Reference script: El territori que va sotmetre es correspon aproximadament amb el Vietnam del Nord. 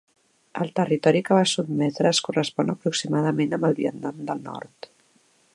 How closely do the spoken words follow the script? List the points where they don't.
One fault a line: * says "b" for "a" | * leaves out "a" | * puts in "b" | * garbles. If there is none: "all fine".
all fine